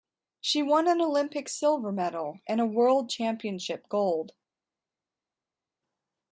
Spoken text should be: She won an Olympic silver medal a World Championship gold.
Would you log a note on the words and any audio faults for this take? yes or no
yes